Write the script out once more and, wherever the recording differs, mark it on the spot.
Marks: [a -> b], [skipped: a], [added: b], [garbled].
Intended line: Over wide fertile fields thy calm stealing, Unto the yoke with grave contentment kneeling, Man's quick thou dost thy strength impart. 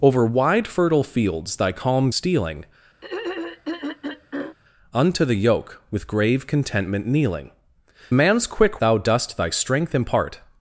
Over wide fertile fields thy calm stealing, Unto the yoke with grave contentment kneeling, Man's quick thou dost thy strength impart.